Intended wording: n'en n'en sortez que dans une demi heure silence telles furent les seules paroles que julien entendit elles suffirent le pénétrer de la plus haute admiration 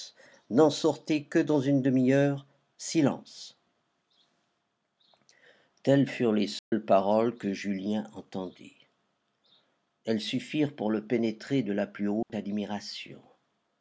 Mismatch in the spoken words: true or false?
true